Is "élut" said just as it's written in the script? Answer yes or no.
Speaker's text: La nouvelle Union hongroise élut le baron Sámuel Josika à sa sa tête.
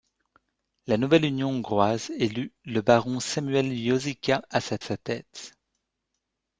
yes